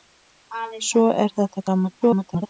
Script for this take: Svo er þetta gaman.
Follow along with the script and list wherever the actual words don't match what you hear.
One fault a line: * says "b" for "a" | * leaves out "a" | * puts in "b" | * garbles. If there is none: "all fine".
* garbles